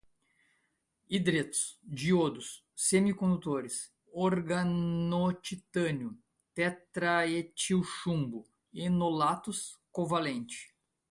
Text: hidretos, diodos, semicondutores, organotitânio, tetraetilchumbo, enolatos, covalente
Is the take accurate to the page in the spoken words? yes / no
yes